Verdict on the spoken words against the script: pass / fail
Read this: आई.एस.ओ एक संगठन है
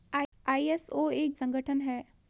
pass